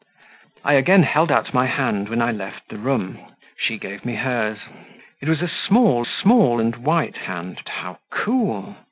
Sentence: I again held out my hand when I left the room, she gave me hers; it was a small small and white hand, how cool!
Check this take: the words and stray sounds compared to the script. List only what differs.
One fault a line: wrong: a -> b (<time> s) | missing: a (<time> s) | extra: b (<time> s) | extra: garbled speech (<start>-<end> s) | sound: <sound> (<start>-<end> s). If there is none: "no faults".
no faults